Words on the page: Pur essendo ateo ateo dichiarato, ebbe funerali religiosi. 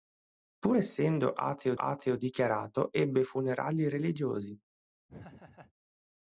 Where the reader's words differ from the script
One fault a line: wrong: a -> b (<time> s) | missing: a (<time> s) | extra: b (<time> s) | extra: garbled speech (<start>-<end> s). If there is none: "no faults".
no faults